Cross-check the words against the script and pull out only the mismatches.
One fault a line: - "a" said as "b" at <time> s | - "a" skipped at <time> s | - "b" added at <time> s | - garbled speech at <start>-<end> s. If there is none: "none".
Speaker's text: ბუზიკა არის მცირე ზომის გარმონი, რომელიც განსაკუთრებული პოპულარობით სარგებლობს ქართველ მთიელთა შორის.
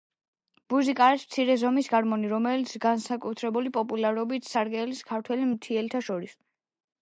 none